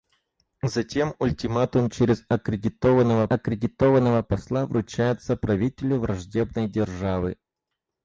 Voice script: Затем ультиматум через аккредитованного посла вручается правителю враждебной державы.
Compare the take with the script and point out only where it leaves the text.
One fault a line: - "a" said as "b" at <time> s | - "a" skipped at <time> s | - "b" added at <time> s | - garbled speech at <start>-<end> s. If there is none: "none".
- "аккредитованного" added at 3.3 s